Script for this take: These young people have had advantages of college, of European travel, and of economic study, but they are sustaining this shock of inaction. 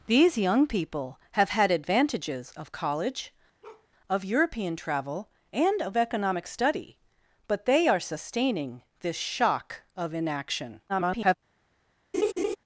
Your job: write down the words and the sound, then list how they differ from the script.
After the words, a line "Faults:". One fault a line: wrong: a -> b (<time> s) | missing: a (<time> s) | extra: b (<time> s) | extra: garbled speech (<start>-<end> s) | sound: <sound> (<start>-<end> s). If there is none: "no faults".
These young people have had advantages of college, of European travel, and of economic study, but they are sustaining this shock of inaction. [garbled]
Faults:
sound: bark (3.6-3.9 s)
extra: garbled speech (10.9-11.3 s)
sound: laugh (12.1-12.6 s)